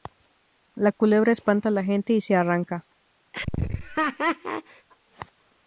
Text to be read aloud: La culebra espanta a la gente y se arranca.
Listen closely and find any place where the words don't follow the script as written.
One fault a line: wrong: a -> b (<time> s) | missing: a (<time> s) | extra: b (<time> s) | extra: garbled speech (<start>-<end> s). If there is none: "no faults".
no faults